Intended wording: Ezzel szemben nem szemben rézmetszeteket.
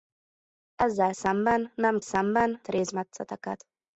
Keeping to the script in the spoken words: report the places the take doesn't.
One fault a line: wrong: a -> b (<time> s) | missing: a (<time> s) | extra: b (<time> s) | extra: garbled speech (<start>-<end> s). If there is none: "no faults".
no faults